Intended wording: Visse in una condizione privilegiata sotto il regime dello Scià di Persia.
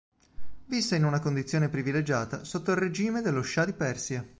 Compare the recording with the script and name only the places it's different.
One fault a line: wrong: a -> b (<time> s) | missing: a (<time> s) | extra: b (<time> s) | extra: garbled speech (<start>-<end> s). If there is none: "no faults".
no faults